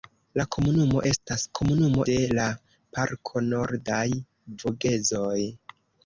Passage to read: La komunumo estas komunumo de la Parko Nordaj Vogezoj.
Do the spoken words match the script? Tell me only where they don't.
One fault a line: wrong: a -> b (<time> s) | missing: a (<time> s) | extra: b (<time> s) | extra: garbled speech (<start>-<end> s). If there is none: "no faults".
no faults